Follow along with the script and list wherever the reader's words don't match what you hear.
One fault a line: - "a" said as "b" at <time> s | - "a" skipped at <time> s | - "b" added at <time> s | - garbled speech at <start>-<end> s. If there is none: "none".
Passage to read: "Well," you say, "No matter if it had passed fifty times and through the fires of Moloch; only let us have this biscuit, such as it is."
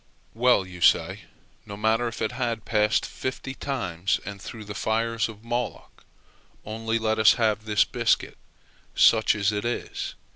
none